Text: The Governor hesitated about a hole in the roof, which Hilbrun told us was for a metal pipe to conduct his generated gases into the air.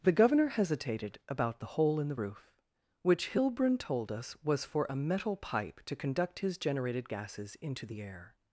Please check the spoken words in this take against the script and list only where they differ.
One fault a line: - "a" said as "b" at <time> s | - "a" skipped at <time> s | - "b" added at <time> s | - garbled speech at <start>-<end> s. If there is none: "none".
- "a" said as "the" at 1.6 s